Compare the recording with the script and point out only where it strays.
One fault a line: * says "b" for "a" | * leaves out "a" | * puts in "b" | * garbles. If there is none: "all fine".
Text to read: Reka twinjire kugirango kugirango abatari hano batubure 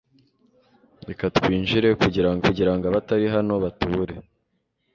all fine